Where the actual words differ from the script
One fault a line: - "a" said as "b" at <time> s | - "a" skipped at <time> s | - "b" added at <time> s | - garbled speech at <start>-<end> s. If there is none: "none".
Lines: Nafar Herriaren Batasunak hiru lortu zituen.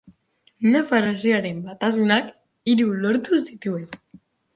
none